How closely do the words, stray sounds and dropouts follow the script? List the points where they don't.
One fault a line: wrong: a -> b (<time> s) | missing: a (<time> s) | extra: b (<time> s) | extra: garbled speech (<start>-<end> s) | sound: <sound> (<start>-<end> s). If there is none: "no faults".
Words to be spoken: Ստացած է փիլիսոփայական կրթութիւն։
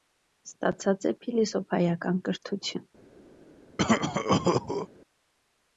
sound: cough (3.8-4.9 s)